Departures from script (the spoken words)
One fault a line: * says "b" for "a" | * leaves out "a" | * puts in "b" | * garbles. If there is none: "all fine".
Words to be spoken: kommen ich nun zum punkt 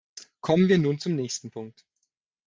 * says "wir" for "ich"
* puts in "nächsten"